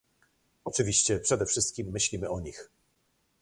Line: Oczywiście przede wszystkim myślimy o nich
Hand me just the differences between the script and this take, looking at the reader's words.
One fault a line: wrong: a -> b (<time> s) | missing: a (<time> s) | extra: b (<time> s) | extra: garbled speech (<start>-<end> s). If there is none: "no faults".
no faults